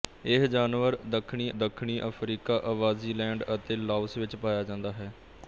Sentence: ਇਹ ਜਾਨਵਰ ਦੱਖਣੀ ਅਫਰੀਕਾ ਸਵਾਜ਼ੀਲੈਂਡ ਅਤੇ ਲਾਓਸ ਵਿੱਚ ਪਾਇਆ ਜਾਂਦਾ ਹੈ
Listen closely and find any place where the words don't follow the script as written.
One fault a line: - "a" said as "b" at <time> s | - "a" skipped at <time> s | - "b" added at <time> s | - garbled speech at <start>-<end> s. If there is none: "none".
- "ਦੱਖਣੀ" added at 1.5 s